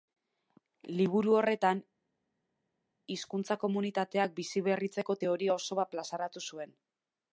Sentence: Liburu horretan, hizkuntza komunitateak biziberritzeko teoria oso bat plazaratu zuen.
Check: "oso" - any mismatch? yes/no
no